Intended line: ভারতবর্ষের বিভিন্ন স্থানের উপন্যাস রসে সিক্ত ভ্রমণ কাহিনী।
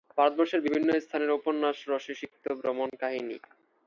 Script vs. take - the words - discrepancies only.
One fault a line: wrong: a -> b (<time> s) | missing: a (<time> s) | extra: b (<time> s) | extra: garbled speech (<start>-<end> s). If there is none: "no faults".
no faults